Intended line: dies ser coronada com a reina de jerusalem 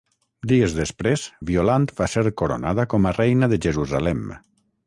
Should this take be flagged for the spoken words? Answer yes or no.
yes